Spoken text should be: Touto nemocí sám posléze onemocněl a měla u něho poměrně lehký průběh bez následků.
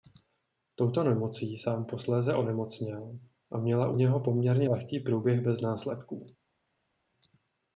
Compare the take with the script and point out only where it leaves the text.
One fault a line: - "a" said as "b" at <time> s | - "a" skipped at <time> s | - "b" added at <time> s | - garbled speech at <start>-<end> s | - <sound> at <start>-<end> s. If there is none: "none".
none